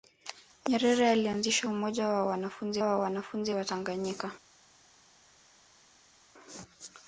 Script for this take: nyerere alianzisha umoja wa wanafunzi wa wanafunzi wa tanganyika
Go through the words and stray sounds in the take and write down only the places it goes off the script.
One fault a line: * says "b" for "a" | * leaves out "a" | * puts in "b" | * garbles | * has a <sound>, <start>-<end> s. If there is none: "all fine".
all fine